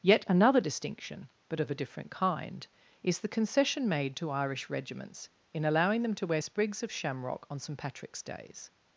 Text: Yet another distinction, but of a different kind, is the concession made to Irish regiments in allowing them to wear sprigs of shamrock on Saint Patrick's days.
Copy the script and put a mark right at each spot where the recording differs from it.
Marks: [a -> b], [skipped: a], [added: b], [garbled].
Yet another distinction, but of a different kind, is the concession made to Irish regiments in allowing them to wear sprigs of shamrock on Saint Patrick's days.